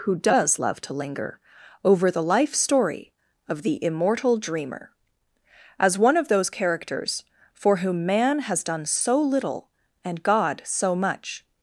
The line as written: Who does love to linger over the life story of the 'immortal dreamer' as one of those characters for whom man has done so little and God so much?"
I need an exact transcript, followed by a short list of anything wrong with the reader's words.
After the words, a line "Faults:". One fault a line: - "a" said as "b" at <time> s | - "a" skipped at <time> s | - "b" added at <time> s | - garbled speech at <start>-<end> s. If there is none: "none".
Who does love to linger over the life story of the 'immortal dreamer' as one of those characters for whom man has done so little and God so much?"
Faults:
none